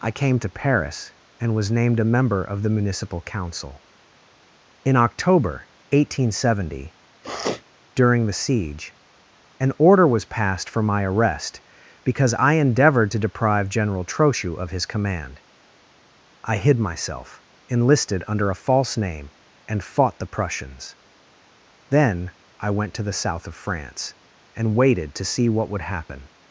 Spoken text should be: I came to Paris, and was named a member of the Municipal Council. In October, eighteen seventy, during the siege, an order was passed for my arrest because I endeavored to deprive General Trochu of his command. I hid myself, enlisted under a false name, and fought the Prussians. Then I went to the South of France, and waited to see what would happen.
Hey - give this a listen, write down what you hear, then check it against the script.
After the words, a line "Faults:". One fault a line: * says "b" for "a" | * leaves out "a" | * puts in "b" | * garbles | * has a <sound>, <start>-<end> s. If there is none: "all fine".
I came to Paris, and was named a member of the Municipal Council. In October, eighteen seventy, during the siege, an order was passed for my arrest because I endeavored to deprive General Trochu of his command. I hid myself, enlisted under a false name, and fought the Prussians. Then I went to the South of France, and waited to see what would happen.
Faults:
* has a sniff, 7.2-7.6 s